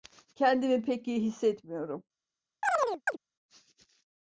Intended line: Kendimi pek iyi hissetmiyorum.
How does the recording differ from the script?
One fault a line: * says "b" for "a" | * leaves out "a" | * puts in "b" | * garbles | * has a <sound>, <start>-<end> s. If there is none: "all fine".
* has a chirp, 2.6-3.2 s